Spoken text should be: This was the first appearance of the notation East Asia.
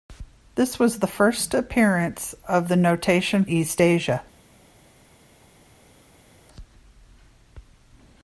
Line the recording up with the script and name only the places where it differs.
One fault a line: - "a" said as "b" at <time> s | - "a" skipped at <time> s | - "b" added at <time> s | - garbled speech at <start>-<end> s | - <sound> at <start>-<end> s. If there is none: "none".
none